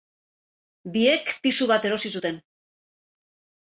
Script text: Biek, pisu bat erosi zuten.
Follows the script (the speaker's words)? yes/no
yes